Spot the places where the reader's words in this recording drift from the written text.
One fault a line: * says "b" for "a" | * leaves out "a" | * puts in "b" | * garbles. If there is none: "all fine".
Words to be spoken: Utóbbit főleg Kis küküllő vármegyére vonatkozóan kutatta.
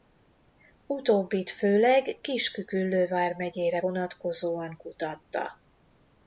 all fine